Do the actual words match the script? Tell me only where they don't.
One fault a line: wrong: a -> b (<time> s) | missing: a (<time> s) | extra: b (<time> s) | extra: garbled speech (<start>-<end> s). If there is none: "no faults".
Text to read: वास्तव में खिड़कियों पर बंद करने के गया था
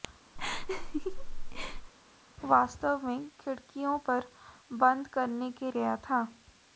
no faults